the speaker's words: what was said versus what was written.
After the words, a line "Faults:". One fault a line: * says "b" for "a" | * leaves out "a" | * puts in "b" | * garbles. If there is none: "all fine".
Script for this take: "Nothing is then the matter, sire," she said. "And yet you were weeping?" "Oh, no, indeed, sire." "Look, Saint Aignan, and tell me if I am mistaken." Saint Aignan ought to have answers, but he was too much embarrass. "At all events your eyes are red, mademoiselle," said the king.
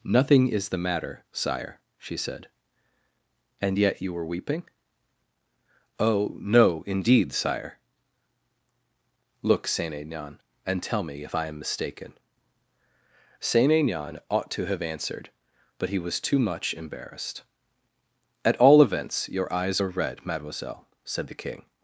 "Nothing is the matter, sire," she said. "And yet you were weeping?" "Oh, no, indeed, sire." "Look, Saint Aignan, and tell me if I am mistaken." Saint Aignan ought to have answered, but he was too much embarrassed. "At all events your eyes are red, mademoiselle," said the king.
Faults:
* leaves out "then"
* says "answered" for "answers"
* says "embarrassed" for "embarrass"